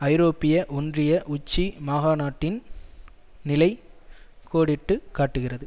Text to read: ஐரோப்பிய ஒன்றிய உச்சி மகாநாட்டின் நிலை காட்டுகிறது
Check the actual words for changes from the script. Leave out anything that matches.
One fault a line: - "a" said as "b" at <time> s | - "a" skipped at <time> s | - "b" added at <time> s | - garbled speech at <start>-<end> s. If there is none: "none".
- "கோடிட்டு" added at 4.5 s